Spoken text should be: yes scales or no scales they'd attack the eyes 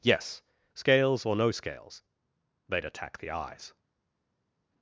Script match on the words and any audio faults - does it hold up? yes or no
yes